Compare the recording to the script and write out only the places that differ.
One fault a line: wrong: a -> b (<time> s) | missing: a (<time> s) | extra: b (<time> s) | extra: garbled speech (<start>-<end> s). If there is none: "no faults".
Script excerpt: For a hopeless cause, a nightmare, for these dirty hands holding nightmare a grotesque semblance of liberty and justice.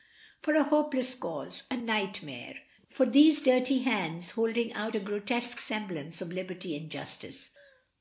wrong: nightmare -> out (4.7 s)